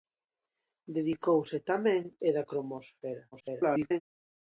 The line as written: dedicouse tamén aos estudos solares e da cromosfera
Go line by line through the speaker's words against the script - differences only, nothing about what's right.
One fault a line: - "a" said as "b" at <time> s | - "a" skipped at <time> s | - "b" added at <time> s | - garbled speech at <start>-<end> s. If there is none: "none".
- "aos estudos solares" skipped at 2.0 s
- garbled speech at 3.3-4.0 s